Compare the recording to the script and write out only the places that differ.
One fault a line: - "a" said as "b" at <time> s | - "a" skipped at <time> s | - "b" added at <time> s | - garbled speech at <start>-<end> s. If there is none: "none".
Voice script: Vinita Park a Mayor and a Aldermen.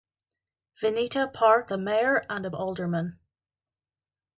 none